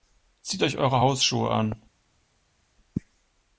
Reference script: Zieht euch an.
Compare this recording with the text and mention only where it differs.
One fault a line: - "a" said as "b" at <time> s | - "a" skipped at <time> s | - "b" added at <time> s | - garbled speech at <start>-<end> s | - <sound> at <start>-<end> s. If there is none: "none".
- "eure Hausschuhe" added at 0.8 s